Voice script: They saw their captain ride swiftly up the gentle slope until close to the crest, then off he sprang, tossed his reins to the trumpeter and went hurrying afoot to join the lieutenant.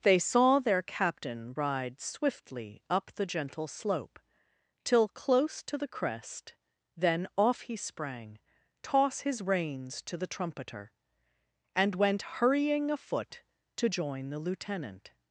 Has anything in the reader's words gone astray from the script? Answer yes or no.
yes